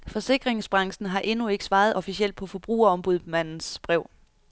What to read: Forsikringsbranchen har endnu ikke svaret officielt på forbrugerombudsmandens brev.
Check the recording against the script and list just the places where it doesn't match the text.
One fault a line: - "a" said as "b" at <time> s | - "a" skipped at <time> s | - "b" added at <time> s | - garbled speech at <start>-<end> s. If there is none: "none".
none